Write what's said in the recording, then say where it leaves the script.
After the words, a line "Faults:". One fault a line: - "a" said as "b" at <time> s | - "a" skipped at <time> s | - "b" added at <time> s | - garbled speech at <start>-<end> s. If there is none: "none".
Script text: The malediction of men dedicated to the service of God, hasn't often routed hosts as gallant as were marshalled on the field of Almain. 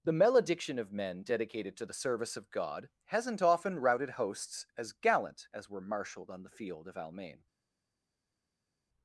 The malediction of men dedicated to the service of God, hasn't often routed hosts as gallant as were marshalled on the field of Almain.
Faults:
none